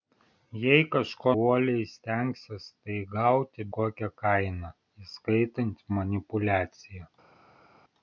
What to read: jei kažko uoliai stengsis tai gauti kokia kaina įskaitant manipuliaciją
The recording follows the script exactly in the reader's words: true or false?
true